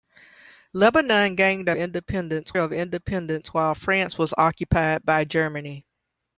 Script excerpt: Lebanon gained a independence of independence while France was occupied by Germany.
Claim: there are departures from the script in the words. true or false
false